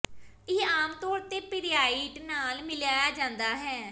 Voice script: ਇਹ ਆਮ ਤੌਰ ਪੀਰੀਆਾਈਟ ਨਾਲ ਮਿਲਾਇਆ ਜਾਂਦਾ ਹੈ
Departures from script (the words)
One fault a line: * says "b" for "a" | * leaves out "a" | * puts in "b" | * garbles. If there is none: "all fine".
* puts in "ਤੇ"